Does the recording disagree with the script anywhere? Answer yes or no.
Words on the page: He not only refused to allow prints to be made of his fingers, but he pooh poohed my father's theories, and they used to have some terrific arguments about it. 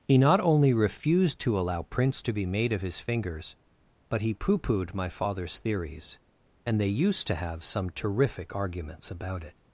no